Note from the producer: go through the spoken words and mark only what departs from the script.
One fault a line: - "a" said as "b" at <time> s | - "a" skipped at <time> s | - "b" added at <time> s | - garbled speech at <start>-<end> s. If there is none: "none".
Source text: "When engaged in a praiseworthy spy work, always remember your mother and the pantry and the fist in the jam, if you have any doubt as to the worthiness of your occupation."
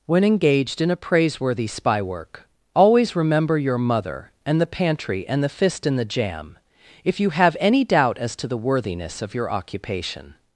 none